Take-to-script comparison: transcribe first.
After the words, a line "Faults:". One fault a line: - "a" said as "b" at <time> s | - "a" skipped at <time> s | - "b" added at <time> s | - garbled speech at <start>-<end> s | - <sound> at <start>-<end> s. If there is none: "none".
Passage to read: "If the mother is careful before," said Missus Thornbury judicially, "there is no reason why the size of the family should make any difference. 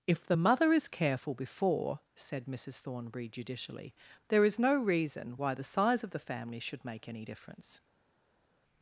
"If the mother is careful before," said Missus Thornbury judicially, "there is no reason why the size of the family should make any difference.
Faults:
none